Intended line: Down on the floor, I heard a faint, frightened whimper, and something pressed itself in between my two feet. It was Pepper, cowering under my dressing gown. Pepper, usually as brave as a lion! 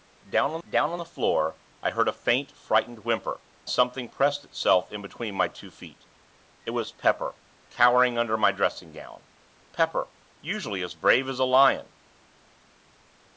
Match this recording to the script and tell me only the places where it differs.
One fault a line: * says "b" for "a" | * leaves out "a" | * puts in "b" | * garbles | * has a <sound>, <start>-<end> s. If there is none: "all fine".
* puts in "down on"
* leaves out "and"